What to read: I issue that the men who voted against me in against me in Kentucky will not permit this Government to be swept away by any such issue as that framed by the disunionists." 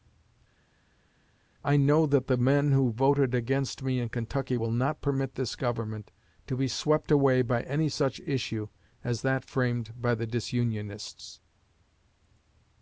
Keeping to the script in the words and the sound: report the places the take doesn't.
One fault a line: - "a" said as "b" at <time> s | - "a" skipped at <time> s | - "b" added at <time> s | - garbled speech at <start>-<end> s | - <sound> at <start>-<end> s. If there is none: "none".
- "issue" said as "know" at 1.7 s
- "against me in" skipped at 4.1 s